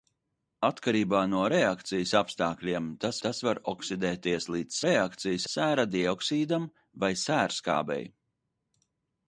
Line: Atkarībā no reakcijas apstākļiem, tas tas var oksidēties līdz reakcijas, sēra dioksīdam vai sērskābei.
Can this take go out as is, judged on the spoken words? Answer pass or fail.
pass